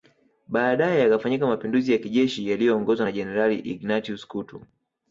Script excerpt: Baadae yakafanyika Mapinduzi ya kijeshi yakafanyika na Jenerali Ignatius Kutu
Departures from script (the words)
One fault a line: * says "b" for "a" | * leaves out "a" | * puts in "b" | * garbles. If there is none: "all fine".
* says "yaliyoongozwa" for "yakafanyika"